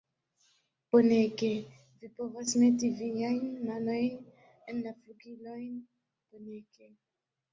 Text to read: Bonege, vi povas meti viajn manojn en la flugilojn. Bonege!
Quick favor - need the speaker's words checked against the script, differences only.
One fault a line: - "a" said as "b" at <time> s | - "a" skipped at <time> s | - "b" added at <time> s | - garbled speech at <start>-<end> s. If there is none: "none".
none